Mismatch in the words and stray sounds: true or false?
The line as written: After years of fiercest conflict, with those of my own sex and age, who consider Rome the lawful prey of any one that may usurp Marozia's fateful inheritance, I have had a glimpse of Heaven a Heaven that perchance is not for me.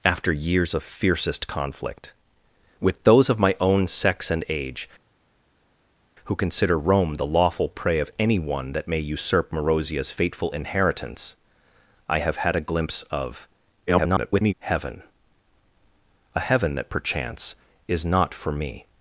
true